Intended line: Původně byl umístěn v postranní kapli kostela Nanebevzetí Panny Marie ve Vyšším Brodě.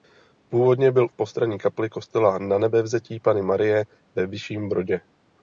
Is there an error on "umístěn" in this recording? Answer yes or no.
yes